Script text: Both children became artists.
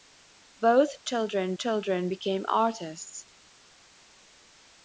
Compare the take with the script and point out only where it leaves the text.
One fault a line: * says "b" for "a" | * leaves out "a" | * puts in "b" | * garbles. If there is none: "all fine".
* puts in "children"